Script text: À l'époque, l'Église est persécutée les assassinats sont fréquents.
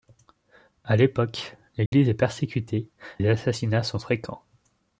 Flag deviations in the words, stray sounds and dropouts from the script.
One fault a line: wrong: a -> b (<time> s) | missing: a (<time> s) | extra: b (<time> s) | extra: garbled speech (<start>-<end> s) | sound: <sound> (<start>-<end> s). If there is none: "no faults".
sound: dropout (1.9-1.9 s)